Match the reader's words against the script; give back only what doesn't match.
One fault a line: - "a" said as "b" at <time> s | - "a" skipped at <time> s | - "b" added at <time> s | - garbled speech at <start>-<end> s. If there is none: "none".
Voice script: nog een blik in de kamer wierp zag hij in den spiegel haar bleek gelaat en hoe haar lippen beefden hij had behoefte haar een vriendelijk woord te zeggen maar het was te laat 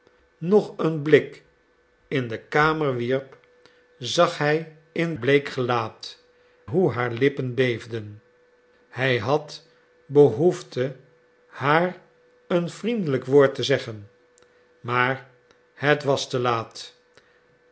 - "den spiegel haar" skipped at 5.2 s
- "en" skipped at 6.2 s